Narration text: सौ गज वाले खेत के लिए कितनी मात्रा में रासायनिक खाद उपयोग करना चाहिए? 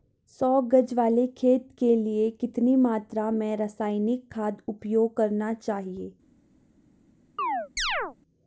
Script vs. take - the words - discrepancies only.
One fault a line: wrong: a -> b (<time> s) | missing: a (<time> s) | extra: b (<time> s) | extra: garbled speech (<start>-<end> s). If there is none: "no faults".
no faults